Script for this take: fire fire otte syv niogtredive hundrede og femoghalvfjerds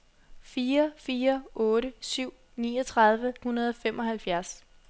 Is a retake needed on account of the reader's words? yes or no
no